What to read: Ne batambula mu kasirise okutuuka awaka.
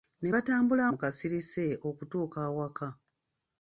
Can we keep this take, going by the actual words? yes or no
yes